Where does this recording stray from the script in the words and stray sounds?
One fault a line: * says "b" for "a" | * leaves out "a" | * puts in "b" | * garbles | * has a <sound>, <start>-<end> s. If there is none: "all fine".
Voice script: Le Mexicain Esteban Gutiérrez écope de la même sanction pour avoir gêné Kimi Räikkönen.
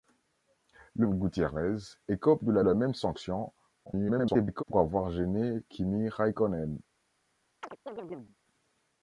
* leaves out "Mexicain Esteban"
* puts in "la"
* garbles
* has a chirp, 7.6-8.4 s